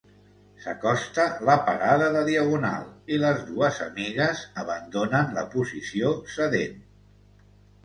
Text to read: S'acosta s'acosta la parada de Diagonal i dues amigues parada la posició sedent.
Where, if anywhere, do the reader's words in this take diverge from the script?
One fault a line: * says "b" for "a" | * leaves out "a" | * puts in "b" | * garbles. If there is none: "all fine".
* leaves out "s'acosta"
* puts in "les"
* says "abandonen" for "parada"